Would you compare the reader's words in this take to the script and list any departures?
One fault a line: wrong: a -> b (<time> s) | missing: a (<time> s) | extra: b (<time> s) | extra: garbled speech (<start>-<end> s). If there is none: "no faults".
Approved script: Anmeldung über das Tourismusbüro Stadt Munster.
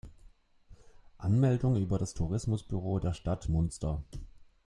extra: der (3.0 s)